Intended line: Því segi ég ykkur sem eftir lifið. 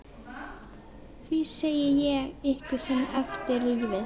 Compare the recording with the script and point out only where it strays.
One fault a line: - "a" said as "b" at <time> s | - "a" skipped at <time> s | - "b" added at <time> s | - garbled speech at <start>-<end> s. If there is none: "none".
none